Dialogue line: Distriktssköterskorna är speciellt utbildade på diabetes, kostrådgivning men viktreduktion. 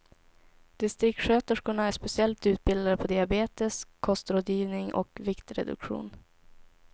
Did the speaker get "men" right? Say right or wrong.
wrong